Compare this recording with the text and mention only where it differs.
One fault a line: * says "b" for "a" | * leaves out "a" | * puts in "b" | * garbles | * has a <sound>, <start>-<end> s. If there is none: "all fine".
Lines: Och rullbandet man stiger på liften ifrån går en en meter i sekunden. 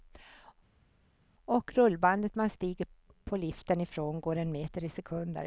* leaves out "en"